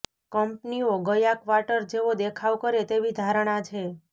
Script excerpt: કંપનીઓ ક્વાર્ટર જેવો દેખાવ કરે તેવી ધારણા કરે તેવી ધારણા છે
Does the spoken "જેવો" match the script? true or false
true